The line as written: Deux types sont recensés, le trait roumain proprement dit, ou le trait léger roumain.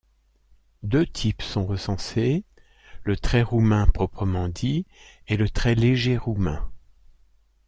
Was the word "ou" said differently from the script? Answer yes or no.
yes